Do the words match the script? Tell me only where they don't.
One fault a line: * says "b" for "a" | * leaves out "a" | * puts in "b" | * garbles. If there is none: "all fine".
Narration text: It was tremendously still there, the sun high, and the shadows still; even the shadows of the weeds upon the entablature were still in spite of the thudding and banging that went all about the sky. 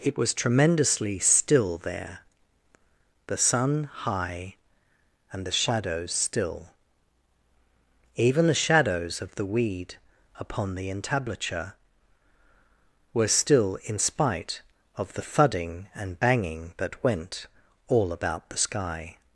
* says "weed" for "weeds"